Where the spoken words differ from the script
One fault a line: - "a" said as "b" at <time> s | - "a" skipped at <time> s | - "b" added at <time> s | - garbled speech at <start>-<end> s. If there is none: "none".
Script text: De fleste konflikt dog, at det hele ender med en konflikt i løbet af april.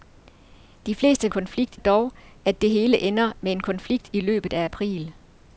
none